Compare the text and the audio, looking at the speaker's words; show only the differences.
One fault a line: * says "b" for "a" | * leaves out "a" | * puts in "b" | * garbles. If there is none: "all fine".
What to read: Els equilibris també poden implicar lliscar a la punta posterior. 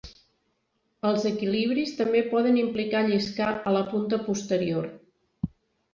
all fine